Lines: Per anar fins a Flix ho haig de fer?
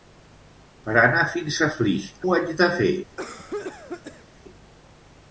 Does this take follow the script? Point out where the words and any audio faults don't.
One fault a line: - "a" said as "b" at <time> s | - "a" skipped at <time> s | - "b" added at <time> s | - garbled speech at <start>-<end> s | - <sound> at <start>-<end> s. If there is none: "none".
- cough at 3.2-4.3 s